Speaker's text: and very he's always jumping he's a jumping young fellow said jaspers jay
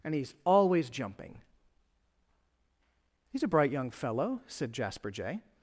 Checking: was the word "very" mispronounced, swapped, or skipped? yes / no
yes